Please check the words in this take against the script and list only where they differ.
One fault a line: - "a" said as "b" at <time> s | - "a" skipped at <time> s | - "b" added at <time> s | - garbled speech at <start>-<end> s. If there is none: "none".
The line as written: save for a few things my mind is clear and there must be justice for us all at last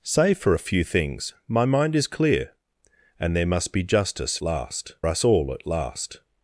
- "for" said as "last" at 4.4 s